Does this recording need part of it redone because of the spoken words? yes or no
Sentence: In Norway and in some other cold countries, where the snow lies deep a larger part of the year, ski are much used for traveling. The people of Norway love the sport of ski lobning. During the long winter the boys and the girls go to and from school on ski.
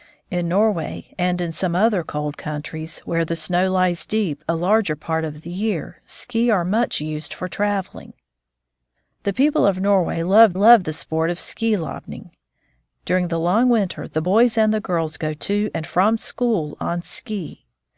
yes